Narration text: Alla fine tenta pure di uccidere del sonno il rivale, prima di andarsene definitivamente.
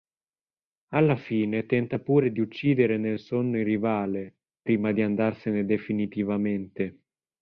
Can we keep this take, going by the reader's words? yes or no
no